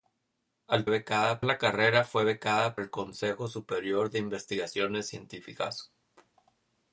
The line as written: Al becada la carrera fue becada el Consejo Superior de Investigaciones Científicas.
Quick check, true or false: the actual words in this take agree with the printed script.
true